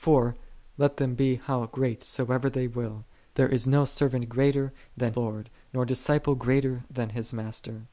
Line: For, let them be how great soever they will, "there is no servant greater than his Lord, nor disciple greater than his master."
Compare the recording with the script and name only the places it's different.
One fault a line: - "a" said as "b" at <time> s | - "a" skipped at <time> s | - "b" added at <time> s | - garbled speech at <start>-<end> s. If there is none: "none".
- "his" skipped at 5.1 s